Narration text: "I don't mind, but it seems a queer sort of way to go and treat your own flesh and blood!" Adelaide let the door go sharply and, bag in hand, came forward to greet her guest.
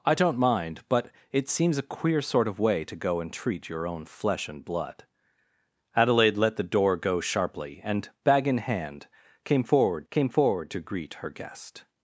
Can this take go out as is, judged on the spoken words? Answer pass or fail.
fail